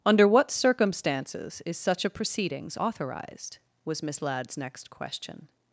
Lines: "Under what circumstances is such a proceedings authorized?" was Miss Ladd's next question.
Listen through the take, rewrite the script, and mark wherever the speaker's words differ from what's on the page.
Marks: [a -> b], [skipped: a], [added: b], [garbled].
"Under what circumstances is such a proceedings authorized?" was Miss Ladd's next question.